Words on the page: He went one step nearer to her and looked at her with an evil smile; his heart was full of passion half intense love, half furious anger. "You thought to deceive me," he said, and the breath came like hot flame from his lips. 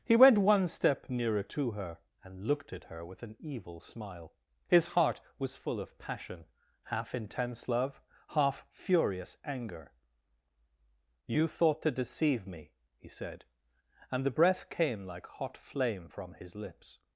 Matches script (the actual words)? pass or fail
pass